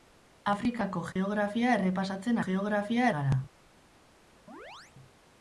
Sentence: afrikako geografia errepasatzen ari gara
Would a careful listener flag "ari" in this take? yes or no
yes